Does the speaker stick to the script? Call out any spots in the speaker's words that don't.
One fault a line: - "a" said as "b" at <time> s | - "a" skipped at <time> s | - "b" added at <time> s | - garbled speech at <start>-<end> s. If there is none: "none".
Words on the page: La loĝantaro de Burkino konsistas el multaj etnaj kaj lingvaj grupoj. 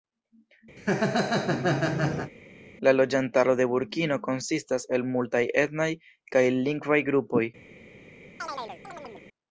none